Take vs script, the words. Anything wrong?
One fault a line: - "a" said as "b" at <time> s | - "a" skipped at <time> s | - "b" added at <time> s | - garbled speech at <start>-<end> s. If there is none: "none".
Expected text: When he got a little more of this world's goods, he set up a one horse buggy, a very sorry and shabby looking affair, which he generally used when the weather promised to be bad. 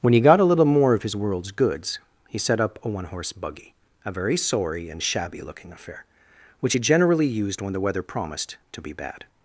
- "this" said as "his" at 1.0 s